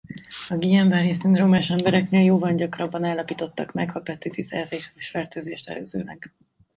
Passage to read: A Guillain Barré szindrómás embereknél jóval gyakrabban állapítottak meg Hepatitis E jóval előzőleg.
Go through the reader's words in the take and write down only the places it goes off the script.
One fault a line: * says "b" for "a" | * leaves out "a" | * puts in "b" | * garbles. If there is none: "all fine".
* says "vírusfertőzést" for "jóval"